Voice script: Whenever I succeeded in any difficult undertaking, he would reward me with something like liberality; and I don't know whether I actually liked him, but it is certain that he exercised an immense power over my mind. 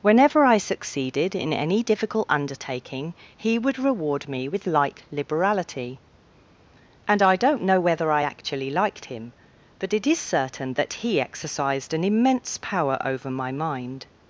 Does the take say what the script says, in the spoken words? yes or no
no